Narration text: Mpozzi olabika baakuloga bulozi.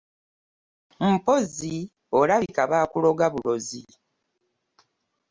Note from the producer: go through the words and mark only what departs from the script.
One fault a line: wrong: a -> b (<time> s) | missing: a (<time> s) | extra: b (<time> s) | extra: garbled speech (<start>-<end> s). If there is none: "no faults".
no faults